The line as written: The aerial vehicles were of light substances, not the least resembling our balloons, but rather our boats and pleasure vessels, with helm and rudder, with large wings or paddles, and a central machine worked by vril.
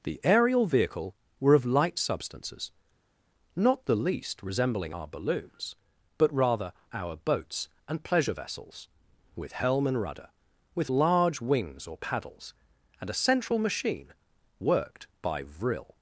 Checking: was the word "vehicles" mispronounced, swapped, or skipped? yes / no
yes